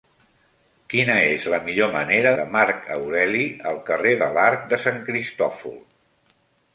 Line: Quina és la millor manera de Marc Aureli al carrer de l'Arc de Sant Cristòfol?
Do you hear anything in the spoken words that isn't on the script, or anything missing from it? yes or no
no